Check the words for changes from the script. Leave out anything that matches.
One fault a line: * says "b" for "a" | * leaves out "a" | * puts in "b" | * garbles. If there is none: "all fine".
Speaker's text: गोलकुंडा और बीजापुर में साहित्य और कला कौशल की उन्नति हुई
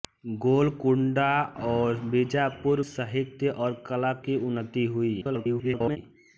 * leaves out "में"
* leaves out "कौशल"
* garbles